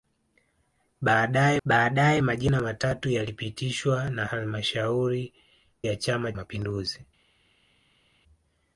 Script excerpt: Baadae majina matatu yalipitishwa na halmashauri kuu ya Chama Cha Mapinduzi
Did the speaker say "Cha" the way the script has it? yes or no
no